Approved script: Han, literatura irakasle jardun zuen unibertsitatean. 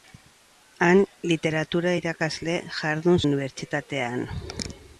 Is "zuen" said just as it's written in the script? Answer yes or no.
no